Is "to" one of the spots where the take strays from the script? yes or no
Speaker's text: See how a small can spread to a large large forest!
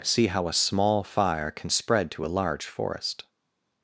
no